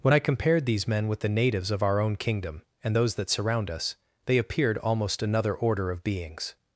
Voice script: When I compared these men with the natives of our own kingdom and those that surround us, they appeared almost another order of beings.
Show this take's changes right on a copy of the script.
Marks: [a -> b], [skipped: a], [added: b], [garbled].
When I compared these men with the natives of our own kingdom and those that surround us, they appeared almost another order of beings.